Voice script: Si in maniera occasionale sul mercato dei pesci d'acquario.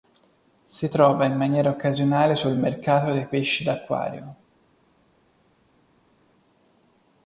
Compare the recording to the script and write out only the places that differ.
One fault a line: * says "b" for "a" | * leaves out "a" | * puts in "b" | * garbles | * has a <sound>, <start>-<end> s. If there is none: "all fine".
* puts in "trova"